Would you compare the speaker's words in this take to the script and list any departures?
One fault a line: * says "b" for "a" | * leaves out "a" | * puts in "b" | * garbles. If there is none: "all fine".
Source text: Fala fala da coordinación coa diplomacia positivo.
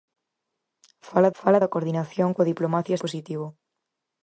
all fine